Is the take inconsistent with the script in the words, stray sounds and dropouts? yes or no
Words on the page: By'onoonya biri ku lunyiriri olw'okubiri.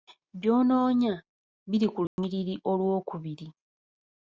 yes